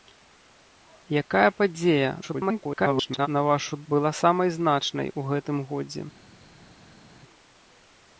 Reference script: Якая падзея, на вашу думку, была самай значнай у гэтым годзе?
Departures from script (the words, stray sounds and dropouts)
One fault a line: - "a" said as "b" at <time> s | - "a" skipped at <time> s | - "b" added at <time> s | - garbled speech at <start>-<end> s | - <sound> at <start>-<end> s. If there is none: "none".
- garbled speech at 2.2-3.3 s
- "думку" skipped at 3.8 s